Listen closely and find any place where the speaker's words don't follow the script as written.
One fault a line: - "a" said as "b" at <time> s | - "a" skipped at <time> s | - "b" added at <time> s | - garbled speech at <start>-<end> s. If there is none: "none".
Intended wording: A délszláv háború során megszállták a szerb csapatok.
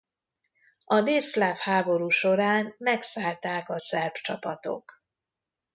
none